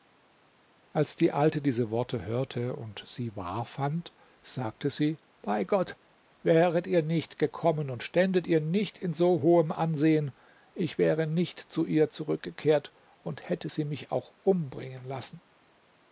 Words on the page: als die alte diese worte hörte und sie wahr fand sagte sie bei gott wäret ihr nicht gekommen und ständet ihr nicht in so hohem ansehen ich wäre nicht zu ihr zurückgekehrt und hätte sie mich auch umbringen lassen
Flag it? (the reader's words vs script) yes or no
no